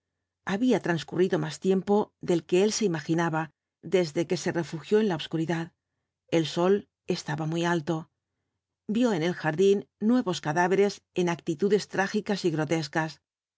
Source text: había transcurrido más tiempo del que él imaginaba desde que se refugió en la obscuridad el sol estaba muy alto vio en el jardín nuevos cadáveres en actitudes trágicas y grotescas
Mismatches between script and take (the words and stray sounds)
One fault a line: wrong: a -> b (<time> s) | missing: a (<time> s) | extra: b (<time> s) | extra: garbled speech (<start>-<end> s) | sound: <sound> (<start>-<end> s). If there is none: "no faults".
extra: se (2.7 s)